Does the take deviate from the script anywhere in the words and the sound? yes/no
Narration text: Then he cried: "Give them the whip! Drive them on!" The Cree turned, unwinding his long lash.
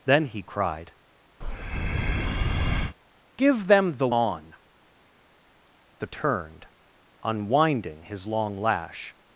yes